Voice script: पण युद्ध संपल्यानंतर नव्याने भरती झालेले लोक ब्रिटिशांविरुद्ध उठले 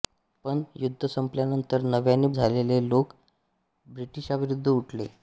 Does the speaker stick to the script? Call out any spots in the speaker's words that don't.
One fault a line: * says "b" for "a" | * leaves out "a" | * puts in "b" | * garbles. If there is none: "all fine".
* leaves out "भरती"